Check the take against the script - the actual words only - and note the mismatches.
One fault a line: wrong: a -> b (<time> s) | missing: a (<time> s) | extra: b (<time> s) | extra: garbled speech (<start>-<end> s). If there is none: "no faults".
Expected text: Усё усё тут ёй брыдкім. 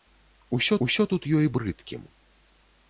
no faults